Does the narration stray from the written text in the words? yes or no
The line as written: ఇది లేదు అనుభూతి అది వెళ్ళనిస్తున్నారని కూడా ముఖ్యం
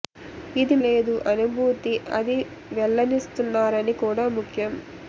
no